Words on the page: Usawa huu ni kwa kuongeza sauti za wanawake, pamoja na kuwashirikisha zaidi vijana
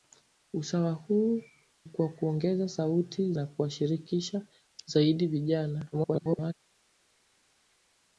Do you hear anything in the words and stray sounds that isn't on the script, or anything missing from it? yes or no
yes